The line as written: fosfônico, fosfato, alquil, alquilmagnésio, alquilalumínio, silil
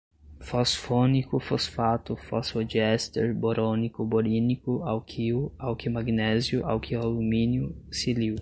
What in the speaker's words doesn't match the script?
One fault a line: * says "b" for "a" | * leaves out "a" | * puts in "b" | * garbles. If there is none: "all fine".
* puts in "fosfodiéster borônico borínico"